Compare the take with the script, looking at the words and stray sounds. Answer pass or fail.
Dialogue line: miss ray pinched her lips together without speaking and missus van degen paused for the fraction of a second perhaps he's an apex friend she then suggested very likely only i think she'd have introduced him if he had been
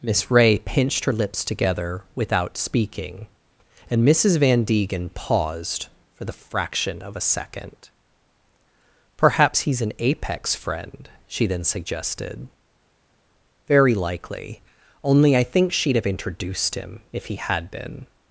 pass